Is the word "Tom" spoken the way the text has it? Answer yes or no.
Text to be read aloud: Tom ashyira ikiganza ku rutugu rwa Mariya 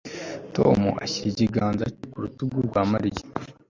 yes